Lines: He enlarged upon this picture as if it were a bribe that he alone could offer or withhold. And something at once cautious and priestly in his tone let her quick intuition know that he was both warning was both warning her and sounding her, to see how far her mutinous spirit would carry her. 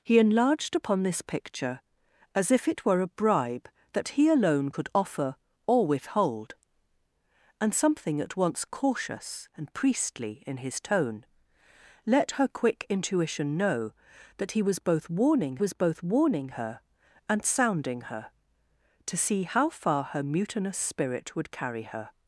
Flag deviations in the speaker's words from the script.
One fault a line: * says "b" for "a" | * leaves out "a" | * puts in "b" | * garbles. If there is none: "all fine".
all fine